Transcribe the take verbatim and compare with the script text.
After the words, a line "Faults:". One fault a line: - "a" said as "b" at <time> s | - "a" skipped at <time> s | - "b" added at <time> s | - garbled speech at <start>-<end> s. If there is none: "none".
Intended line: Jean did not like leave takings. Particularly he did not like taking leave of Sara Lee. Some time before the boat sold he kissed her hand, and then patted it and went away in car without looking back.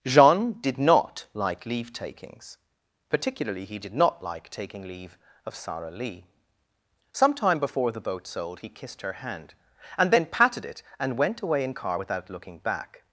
Jean did not like leave takings. Particularly he did not like taking leave of Sara Lee. Some time before the boat sold he kissed her hand, and then patted it and went away in car without looking back.
Faults:
none